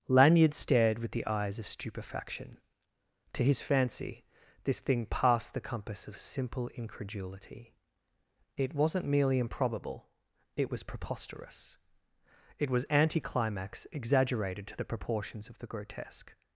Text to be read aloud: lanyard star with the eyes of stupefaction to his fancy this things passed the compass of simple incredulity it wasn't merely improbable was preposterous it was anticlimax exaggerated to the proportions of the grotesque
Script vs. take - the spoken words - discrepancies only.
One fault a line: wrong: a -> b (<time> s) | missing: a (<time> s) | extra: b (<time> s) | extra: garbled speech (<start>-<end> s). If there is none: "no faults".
wrong: star -> stared (0.5 s)
wrong: things -> thing (4.8 s)
extra: it (10.6 s)